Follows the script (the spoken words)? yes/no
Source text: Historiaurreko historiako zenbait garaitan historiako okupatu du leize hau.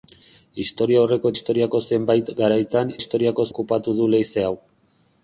yes